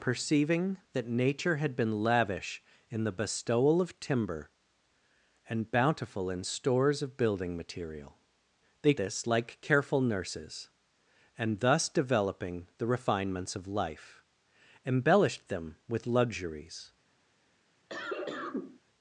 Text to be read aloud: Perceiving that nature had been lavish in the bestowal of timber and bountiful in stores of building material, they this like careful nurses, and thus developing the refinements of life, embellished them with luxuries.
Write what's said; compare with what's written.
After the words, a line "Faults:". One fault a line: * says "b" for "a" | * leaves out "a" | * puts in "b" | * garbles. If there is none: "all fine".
Perceiving that nature had been lavish in the bestowal of timber and bountiful in stores of building material, they this like careful nurses, and thus developing the refinements of life, embellished them with luxuries.
Faults:
all fine